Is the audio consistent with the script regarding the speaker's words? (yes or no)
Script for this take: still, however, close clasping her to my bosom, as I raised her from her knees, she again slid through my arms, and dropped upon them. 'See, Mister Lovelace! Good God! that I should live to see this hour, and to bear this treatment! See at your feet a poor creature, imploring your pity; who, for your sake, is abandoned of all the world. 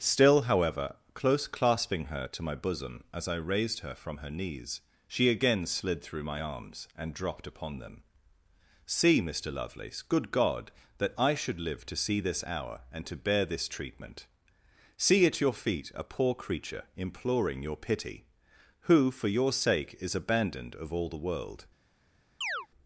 yes